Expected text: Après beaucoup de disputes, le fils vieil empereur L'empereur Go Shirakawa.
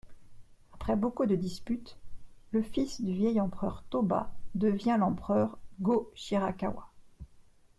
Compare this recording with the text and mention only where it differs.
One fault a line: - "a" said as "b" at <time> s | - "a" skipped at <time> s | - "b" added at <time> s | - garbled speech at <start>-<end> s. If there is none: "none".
- "du" added at 3.0 s
- "Toba devient" added at 3.9 s